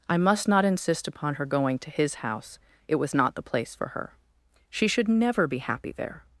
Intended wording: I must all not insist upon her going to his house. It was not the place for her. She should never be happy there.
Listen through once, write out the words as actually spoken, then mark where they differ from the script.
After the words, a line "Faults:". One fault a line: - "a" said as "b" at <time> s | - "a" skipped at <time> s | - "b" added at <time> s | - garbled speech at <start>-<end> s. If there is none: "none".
I must not insist upon her going to his house. It was not the place for her. She should never be happy there.
Faults:
- "all" skipped at 0.5 s